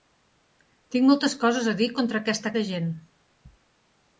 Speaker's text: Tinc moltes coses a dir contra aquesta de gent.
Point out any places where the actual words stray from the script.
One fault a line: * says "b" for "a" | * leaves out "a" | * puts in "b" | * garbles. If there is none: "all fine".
all fine